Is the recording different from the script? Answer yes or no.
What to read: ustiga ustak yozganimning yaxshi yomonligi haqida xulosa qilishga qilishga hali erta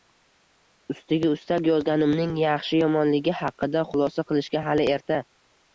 yes